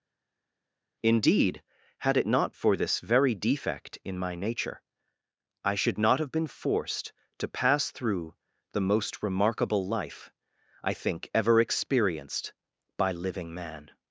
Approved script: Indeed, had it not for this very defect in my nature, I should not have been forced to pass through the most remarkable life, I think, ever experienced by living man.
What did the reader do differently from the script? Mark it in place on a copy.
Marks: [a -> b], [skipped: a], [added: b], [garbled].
Indeed, had it not for this very defect in my nature, I should not have been forced to pass through the most remarkable life, I think, ever experienced by living man.